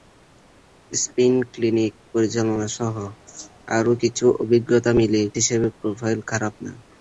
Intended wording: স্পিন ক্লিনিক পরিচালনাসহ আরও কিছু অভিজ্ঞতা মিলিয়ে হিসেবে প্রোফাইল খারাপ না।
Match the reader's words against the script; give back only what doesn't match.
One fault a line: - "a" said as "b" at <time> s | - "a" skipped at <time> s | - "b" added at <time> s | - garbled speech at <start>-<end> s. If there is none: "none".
none